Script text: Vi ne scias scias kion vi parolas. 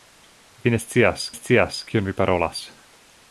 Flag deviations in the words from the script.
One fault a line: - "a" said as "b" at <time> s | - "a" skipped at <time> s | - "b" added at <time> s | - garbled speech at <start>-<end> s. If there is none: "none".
none